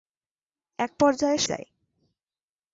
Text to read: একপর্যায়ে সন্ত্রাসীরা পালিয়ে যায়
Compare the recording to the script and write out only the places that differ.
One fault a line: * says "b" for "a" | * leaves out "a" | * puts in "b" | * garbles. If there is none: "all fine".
* leaves out "সন্ত্রাসীরা পালিয়ে"